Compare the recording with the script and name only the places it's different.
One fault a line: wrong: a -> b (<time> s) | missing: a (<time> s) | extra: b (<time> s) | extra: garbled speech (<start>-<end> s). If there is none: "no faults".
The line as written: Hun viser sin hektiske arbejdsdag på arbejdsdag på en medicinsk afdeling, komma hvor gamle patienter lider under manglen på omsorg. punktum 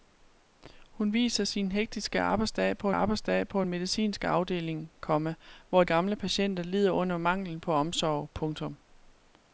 no faults